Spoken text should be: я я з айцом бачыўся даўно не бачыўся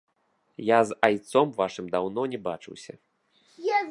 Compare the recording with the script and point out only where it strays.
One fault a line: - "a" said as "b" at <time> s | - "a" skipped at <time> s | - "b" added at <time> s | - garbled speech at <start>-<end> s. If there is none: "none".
- "я" skipped at 0.8 s
- "бачыўся" said as "вашым" at 1.6 s